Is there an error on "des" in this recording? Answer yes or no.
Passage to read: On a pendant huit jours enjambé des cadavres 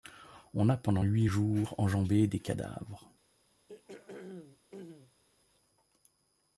no